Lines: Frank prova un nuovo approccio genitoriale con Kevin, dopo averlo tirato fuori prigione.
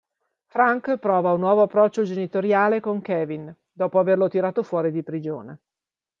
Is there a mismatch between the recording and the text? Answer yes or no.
yes